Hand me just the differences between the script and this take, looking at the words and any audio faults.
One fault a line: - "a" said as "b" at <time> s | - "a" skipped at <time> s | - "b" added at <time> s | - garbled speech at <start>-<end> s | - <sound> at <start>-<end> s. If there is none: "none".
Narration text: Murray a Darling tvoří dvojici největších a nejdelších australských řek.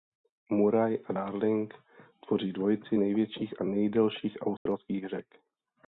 - dropout at 4.6-4.7 s